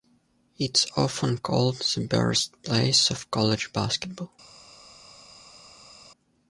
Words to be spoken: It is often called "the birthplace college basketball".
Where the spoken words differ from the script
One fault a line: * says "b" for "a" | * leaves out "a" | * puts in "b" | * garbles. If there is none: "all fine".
* puts in "of"